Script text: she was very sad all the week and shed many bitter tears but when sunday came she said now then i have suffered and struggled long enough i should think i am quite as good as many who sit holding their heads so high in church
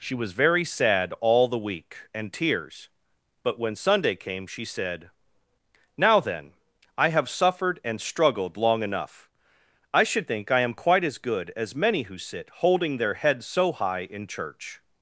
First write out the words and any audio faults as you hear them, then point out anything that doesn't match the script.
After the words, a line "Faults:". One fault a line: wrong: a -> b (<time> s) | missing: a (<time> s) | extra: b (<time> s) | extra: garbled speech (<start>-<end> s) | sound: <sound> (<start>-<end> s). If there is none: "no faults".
she was very sad all the week and tears but when sunday came she said now then i have suffered and struggled long enough i should think i am quite as good as many who sit holding their heads so high in church
Faults:
missing: shed many bitter (2.3 s)